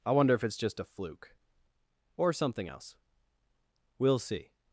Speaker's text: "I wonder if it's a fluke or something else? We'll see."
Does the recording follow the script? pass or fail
fail